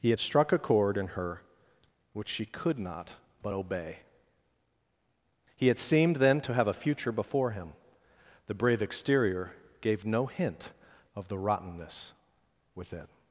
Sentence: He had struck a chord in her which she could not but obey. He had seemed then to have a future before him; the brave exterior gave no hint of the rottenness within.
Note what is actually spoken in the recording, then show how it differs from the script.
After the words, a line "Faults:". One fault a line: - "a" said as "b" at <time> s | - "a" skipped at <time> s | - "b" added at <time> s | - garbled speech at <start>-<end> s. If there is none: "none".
He had struck a chord in her which she could not but obey. He had seemed then to have a future before him; the brave exterior gave no hint of the rottenness within.
Faults:
none